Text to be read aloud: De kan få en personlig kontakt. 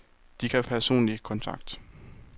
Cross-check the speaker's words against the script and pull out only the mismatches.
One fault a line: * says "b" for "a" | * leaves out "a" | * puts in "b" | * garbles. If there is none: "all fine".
* leaves out "få en"